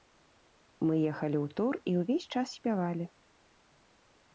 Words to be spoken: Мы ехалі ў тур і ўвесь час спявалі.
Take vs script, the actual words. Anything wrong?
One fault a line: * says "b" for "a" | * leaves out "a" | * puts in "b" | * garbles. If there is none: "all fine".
all fine